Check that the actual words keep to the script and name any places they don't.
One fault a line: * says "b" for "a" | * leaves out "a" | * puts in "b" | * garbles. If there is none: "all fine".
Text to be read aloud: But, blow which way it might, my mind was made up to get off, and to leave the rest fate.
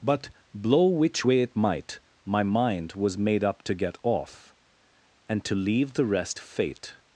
all fine